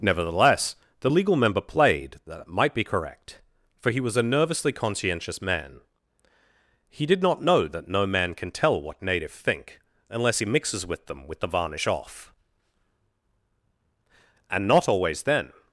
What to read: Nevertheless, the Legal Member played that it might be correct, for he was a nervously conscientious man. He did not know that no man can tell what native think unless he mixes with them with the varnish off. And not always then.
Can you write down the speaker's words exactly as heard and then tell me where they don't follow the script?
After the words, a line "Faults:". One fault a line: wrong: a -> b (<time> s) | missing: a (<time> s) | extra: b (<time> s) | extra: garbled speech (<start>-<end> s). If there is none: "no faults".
Nevertheless, the Legal Member played that it might be correct, for he was a nervously conscientious man. He did not know that no man can tell what native think unless he mixes with them with the varnish off. And not always then.
Faults:
no faults